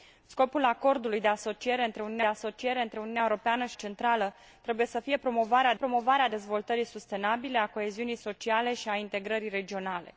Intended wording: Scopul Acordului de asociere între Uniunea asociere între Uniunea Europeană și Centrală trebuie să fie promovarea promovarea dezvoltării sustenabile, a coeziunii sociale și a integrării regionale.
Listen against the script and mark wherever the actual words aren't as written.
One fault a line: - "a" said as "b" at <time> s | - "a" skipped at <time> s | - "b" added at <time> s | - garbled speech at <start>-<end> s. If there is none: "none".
none